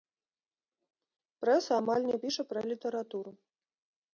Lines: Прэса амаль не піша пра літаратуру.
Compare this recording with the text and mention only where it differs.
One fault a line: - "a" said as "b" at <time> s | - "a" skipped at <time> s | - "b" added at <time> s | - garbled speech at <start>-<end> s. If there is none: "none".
none